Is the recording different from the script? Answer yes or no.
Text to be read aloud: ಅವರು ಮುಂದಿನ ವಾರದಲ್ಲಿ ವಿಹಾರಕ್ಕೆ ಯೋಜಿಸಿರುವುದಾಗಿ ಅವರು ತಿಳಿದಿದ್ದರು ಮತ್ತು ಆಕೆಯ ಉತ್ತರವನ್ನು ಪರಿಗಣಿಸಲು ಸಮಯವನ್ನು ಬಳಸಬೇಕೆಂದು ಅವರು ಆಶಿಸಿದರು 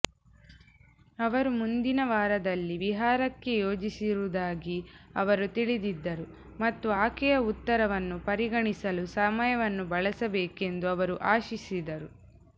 no